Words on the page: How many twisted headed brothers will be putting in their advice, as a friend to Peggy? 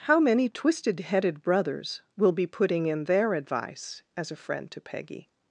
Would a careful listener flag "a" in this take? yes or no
no